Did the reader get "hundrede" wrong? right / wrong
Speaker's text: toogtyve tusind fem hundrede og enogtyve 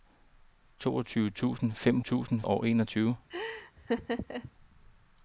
wrong